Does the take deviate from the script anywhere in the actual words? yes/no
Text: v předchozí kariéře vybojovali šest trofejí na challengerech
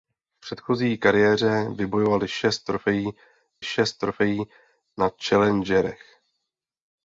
yes